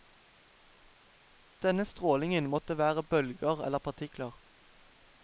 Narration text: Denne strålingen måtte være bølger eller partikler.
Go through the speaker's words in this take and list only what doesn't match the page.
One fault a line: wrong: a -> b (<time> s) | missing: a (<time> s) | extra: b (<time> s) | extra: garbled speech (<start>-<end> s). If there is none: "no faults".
no faults